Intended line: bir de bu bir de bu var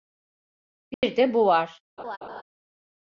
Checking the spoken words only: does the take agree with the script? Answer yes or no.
no